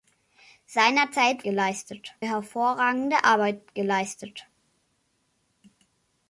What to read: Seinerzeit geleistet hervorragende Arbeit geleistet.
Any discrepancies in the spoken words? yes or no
no